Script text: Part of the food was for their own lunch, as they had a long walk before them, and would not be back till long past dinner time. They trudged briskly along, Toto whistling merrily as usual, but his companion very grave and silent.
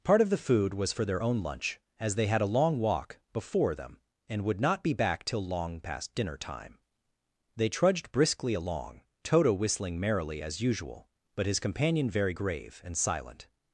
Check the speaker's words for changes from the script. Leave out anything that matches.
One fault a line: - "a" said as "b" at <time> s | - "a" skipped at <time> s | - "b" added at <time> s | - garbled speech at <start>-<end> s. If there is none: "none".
none